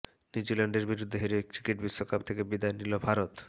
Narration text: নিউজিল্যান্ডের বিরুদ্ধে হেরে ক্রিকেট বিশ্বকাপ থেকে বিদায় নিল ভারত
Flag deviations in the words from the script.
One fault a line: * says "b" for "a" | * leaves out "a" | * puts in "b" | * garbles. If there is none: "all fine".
all fine